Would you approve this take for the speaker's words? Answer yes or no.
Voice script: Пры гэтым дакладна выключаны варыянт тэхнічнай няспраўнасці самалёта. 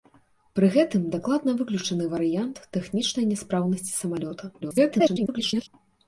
no